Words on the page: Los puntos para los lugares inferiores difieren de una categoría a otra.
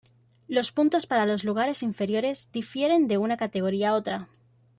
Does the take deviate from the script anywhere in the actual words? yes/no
no